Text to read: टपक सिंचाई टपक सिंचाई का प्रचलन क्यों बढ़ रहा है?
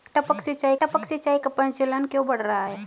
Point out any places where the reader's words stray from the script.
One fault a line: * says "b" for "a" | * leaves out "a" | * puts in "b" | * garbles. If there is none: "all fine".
all fine